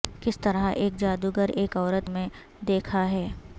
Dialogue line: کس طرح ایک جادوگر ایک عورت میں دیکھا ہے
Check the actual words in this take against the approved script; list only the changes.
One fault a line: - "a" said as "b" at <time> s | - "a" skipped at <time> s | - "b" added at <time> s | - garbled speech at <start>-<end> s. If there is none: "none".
none